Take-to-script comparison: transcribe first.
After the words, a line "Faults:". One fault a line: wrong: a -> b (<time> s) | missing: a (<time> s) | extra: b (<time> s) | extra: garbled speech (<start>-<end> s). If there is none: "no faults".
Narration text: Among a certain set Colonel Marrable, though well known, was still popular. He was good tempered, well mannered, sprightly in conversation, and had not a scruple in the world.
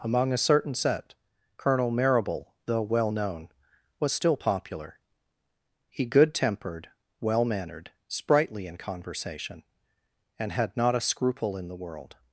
Among a certain set Colonel Marrable, though well known, was still popular. He good tempered, well mannered, sprightly in conversation, and had not a scruple in the world.
Faults:
missing: was (6.0 s)